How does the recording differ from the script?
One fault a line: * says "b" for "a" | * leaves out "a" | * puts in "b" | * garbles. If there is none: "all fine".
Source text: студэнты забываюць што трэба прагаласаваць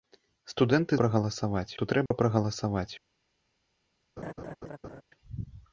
* says "прагаласаваць" for "забываюць"